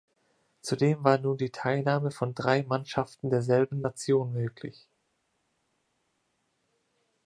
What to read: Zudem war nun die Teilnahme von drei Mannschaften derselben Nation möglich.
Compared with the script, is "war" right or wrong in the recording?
right